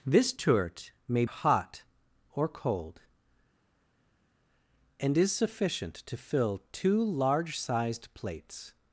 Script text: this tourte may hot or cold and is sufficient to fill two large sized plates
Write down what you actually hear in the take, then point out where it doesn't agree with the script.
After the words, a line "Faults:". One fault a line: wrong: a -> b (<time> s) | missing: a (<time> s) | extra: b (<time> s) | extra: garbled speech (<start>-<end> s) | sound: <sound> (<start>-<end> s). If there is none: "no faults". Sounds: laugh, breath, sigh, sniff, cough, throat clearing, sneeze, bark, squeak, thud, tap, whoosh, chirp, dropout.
this tourte may hot or cold and is sufficient to fill two large sized plates
Faults:
no faults